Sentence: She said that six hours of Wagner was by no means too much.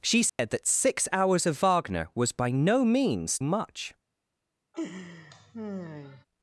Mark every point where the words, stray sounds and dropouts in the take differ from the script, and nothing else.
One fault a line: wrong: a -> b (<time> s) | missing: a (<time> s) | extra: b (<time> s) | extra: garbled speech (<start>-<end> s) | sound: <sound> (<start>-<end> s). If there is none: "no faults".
sound: dropout (0.3-0.4 s)
missing: too (3.4 s)
sound: laugh (4.7-6.2 s)